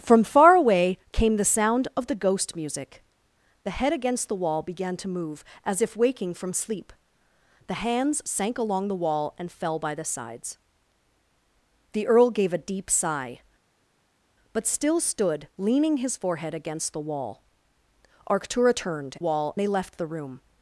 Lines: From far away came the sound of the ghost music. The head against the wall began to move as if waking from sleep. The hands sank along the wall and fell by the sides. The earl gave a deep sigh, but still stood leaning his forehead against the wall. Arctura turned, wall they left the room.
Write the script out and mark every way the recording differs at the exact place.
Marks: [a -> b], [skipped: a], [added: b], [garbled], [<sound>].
From far away came the sound of the ghost music. The head against the wall began to move as if waking from sleep. The hands sank along the wall and fell by the sides. The earl gave a deep sigh, but still stood leaning his forehead against the wall. Arctura turned, wall they left the room.